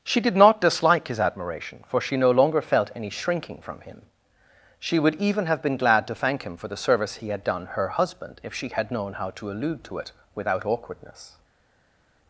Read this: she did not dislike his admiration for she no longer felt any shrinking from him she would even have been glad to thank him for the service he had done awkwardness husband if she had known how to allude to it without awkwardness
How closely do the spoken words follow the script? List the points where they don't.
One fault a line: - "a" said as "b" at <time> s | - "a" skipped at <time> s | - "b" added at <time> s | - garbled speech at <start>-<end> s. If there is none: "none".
- "awkwardness" said as "her" at 7.7 s